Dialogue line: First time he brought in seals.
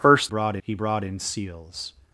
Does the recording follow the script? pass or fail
fail